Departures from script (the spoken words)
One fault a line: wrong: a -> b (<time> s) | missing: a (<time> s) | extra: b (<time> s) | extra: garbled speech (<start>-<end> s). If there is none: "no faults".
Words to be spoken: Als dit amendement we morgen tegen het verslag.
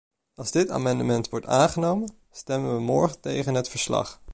extra: wordt aangenomen stemmen (1.3 s)